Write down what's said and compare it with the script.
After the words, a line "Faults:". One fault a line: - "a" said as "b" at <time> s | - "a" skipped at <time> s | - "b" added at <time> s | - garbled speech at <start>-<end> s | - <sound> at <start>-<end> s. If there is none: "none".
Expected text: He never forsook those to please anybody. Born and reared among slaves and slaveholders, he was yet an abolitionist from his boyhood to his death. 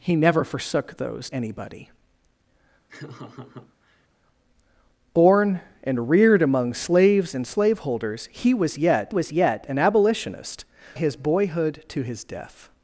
He never forsook those anybody. Born and reared among slaves and slaveholders, he was yet was yet an abolitionist his boyhood to his death.
Faults:
- "to please" skipped at 1.3 s
- laugh at 2.9-4.1 s
- "was yet" added at 9.1 s
- "from" skipped at 10.6 s